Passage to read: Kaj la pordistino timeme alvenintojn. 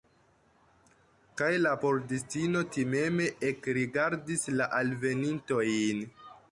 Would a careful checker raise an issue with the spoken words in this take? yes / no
yes